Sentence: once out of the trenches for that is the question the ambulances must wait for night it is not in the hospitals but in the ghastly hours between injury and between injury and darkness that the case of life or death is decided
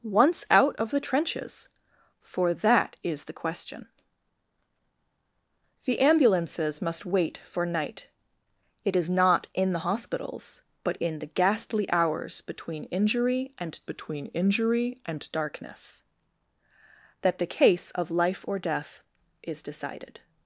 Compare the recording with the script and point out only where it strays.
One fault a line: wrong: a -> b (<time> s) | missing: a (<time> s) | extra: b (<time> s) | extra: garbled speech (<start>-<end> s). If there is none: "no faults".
no faults